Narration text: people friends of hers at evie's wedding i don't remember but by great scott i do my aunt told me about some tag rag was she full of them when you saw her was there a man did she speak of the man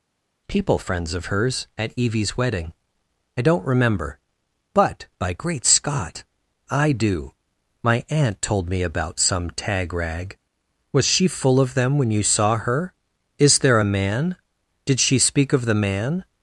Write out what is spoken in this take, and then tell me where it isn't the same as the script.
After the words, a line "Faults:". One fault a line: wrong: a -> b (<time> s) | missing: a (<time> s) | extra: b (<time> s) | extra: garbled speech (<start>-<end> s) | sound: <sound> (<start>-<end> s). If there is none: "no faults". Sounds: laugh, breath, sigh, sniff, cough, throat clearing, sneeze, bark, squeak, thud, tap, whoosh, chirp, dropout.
people friends of hers at evie's wedding i don't remember but by great scott i do my aunt told me about some tag rag was she full of them when you saw her is there a man did she speak of the man
Faults:
wrong: was -> is (13.4 s)